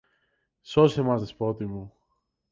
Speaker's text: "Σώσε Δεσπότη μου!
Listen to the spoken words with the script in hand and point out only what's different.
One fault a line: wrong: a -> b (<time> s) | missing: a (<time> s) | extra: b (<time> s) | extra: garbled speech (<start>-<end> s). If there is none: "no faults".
extra: μας (1.0 s)